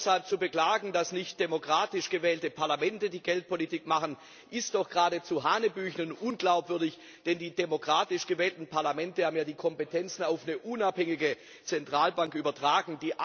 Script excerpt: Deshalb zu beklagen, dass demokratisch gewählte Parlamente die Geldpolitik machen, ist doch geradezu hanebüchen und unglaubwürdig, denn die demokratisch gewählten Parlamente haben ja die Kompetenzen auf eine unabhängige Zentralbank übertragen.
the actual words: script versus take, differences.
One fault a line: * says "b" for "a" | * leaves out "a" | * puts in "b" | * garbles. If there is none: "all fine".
* puts in "nicht"